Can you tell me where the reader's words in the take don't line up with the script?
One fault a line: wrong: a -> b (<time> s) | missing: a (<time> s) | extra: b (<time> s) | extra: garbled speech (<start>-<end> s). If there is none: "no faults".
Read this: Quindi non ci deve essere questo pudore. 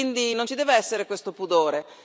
no faults